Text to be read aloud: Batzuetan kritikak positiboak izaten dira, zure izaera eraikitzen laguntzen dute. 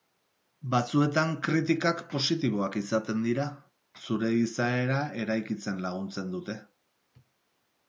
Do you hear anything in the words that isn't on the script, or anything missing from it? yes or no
no